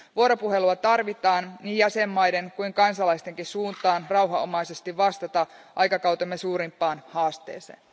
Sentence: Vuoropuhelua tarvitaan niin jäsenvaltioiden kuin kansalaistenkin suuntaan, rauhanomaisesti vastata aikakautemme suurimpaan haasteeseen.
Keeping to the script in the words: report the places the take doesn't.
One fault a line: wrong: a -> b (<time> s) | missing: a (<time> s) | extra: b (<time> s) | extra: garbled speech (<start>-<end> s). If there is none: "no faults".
no faults